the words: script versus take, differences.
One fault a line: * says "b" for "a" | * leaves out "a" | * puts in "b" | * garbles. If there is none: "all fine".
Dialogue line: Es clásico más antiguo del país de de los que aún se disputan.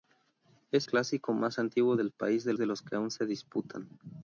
all fine